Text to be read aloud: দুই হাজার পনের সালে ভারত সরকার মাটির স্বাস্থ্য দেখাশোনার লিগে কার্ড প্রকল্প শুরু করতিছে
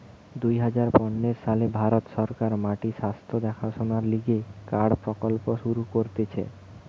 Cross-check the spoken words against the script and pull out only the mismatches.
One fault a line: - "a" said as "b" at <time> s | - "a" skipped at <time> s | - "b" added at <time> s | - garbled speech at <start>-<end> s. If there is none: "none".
none